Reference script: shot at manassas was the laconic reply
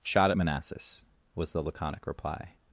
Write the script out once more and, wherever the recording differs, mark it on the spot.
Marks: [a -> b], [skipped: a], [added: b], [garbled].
shot at manassas was the laconic reply